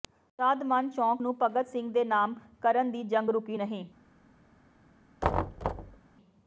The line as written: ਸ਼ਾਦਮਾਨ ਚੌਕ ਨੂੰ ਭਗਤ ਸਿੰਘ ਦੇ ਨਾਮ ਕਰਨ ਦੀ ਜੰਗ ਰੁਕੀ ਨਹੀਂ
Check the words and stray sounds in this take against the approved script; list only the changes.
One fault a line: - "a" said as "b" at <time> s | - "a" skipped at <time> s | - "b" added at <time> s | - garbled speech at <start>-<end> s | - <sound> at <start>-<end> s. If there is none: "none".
- thud at 5.2-6.0 s